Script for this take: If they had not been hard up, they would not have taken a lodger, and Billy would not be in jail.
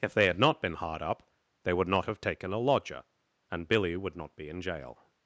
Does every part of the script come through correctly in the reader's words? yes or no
yes